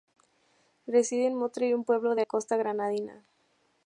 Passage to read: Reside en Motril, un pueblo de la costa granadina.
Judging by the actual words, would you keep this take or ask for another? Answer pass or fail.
pass